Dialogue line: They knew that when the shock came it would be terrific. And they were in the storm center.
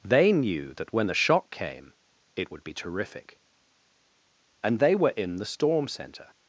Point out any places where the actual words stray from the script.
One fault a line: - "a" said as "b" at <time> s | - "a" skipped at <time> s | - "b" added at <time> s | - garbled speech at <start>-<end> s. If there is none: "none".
none